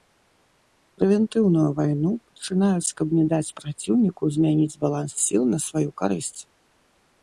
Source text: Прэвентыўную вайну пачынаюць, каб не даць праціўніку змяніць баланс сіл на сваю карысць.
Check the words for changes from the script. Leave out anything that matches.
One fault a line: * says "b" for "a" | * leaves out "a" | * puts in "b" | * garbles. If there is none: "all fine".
all fine